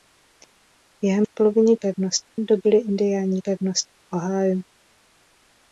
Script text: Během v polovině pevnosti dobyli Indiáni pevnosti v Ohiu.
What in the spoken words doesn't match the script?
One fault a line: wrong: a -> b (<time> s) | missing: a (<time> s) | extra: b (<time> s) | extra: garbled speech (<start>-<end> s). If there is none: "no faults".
no faults